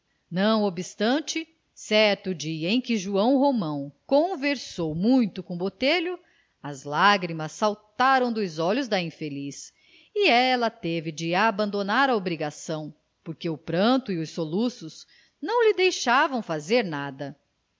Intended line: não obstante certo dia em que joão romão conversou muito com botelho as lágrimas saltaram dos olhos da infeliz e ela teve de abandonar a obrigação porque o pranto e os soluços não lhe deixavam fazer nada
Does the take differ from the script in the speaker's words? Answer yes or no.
no